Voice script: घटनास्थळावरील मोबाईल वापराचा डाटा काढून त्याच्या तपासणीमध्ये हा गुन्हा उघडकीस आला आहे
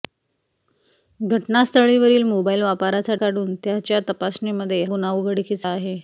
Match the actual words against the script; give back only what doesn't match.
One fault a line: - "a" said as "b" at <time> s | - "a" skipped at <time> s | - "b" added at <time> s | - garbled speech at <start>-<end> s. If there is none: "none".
- "डाटा" skipped at 3.1 s
- "हा" skipped at 4.8 s
- "आला" skipped at 5.7 s